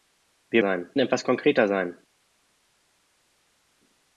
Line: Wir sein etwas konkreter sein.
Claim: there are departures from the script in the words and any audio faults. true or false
false